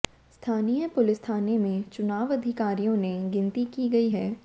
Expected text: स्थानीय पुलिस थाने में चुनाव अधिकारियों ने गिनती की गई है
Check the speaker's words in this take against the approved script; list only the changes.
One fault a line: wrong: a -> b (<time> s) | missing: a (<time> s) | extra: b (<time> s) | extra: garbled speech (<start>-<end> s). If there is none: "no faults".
no faults